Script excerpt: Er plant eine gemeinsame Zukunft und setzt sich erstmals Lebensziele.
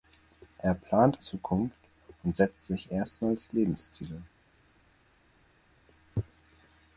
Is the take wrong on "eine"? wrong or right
wrong